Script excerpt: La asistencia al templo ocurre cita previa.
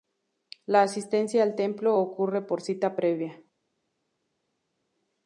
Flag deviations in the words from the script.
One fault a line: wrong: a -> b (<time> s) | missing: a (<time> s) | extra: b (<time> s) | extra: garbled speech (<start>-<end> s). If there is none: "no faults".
extra: por (2.4 s)